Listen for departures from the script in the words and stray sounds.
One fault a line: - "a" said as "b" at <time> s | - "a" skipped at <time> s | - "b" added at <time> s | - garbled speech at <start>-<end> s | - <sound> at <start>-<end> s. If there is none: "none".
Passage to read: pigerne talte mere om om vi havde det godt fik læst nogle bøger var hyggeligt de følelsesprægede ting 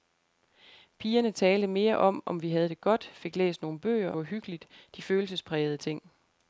none